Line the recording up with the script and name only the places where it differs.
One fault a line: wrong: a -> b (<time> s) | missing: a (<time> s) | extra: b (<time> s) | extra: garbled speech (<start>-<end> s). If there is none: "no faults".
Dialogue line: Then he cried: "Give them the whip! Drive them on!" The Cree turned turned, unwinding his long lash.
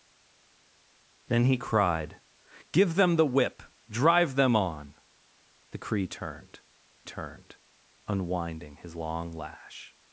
no faults